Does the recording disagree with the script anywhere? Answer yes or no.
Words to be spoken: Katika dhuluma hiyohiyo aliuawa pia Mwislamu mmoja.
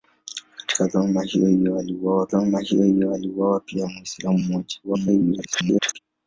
yes